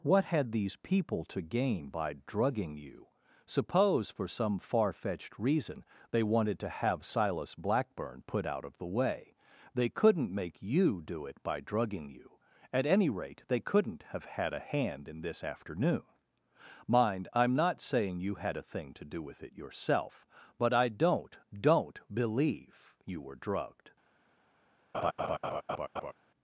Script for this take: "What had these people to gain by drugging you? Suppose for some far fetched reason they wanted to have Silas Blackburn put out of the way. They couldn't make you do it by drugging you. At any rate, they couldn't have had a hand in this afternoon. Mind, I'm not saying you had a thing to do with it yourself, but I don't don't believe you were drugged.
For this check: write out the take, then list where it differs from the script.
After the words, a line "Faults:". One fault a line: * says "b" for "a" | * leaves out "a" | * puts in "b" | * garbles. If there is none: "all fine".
"What had these people to gain by drugging you? Suppose for some far fetched reason they wanted to have Silas Blackburn put out of the way. They couldn't make you do it by drugging you. At any rate, they couldn't have had a hand in this afternoon. Mind, I'm not saying you had a thing to do with it yourself, but I don't don't believe you were drugged.
Faults:
all fine